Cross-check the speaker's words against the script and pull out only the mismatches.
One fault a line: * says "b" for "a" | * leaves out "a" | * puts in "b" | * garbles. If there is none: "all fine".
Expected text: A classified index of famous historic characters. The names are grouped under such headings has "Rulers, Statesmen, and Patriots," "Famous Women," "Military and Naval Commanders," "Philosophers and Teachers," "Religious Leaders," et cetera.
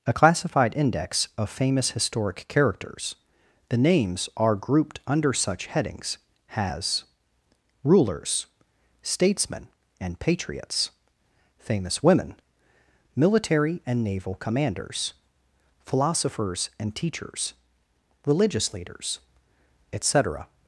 all fine